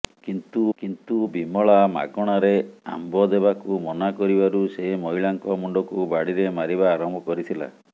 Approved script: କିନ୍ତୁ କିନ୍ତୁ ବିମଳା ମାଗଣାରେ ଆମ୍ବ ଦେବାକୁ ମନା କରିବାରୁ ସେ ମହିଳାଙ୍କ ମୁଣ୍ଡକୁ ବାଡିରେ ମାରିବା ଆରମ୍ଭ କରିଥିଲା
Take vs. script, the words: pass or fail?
pass